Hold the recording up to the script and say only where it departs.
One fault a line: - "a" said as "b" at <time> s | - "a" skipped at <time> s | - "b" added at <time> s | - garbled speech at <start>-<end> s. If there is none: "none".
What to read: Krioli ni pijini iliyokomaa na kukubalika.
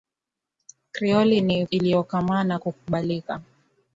- "pijini" skipped at 1.6 s